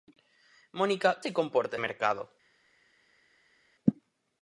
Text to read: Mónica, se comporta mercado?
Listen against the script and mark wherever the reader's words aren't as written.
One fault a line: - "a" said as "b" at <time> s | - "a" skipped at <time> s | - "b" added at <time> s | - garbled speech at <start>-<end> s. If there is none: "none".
none